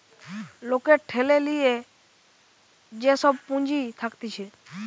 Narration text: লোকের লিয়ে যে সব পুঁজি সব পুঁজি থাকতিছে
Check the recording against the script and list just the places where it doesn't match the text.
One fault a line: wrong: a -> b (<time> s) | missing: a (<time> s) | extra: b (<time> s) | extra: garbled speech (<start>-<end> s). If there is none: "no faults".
extra: ঠেলে (1.1 s)
missing: সব পুঁজি (3.8 s)